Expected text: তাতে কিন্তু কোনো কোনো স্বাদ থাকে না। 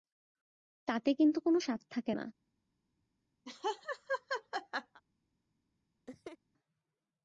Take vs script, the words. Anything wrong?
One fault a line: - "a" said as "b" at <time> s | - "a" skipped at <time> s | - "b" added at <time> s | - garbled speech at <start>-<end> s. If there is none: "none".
- "কোনো" skipped at 1.6 s